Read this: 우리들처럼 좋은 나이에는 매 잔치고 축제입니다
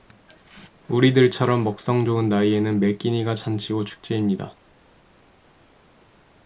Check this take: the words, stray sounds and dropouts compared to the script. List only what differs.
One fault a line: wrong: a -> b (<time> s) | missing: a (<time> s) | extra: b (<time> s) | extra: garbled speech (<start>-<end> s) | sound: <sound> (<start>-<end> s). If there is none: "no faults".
extra: 먹성 (1.6 s)
extra: 끼니가 (3.0 s)